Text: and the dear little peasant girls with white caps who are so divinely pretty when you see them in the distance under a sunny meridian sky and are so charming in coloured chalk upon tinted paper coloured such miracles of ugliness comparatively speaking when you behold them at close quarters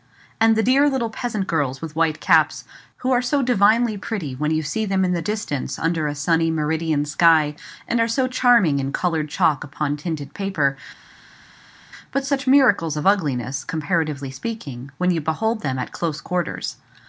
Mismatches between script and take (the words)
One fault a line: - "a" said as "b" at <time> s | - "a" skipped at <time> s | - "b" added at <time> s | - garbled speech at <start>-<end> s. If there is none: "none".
- "coloured" said as "but" at 12.1 s